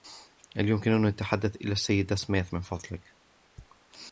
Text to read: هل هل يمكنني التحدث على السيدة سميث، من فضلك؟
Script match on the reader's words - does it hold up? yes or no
no